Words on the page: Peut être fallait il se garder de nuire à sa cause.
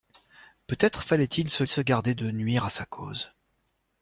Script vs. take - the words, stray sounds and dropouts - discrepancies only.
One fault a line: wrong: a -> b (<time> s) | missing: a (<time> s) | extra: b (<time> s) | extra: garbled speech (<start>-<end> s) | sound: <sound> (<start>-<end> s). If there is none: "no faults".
extra: se (1.6 s)